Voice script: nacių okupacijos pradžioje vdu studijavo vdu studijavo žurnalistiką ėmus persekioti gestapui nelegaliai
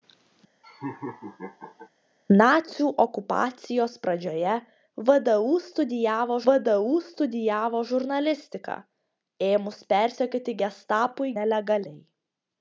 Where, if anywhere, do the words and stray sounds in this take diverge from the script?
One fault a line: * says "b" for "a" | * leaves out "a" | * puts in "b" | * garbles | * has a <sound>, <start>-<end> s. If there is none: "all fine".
* has a laugh, 0.6-1.9 s